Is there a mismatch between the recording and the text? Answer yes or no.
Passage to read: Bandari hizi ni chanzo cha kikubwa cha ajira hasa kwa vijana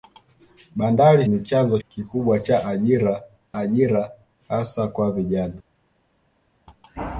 yes